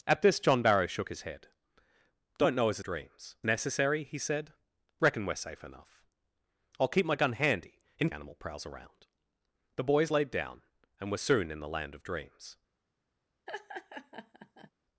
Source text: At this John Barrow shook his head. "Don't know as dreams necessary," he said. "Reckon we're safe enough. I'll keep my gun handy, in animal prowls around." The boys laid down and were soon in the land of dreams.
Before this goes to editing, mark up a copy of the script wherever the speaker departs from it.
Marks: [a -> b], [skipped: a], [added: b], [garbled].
At this John Barrow shook his head. "Don't know as dreams necessary," he said. "Reckon we're safe enough. I'll keep my gun handy, in animal prowls around." The boys laid down and were soon in the land of dreams.